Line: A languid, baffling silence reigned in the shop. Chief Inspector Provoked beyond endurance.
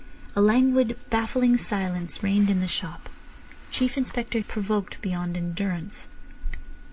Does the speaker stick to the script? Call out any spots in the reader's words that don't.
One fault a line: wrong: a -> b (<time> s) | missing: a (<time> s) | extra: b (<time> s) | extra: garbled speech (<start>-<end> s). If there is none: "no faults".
no faults